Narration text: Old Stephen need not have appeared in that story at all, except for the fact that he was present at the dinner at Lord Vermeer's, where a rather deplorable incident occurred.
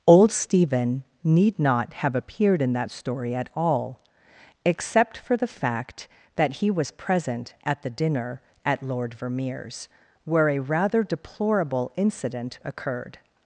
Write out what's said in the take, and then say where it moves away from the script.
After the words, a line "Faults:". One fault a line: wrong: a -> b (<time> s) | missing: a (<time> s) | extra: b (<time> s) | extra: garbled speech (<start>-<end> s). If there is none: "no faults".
Old Stephen need not have appeared in that story at all, except for the fact that he was present at the dinner at Lord Vermeer's, where a rather deplorable incident occurred.
Faults:
no faults